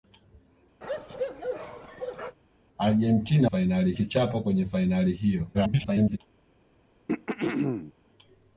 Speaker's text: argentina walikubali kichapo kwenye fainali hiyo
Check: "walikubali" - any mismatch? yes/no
yes